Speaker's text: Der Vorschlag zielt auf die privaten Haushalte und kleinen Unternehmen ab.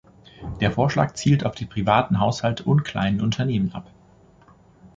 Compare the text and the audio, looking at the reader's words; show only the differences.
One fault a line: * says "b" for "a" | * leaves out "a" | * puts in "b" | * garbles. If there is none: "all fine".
all fine